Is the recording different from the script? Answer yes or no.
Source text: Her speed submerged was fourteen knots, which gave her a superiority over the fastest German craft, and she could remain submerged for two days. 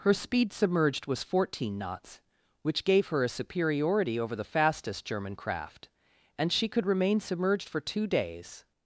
no